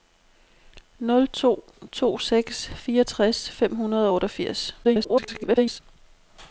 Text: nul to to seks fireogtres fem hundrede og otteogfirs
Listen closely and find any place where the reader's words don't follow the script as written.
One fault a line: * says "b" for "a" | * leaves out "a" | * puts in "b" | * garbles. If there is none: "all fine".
* garbles